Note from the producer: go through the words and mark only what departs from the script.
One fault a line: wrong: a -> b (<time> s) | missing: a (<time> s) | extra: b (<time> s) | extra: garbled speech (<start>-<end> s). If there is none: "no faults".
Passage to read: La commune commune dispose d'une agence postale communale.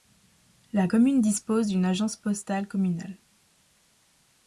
missing: commune (1.2 s)